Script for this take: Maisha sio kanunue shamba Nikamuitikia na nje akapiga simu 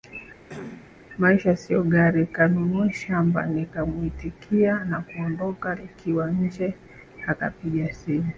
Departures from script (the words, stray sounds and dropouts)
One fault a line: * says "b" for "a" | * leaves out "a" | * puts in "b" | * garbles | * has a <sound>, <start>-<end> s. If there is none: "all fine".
* has a cough, 0.5-0.9 s
* puts in "gari"
* puts in "kuondoka Nikiwa"